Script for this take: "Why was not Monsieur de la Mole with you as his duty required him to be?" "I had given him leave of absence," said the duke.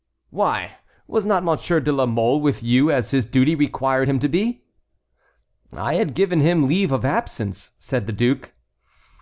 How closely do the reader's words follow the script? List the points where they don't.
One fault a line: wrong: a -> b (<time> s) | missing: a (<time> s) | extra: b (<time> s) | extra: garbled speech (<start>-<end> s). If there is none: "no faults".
no faults